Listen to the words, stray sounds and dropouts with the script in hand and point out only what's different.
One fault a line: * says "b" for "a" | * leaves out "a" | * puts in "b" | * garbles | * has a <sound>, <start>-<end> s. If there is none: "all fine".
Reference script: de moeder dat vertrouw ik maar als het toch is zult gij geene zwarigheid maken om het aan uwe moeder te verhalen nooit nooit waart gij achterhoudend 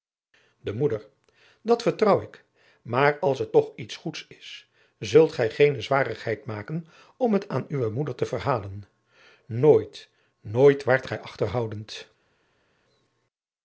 * puts in "iets goeds"